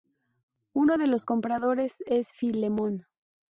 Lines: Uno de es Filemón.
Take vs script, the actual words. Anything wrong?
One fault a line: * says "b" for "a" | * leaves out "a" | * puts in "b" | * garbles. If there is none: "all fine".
* puts in "los compradores"